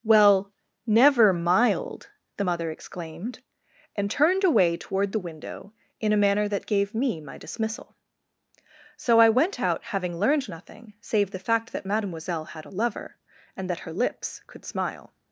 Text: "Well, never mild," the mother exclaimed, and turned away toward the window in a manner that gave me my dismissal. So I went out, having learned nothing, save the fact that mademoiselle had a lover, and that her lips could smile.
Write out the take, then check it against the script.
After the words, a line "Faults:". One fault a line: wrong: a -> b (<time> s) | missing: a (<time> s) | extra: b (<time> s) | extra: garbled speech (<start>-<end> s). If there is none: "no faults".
"Well, never mild," the mother exclaimed, and turned away toward the window in a manner that gave me my dismissal. So I went out, having learned nothing, save the fact that mademoiselle had a lover, and that her lips could smile.
Faults:
no faults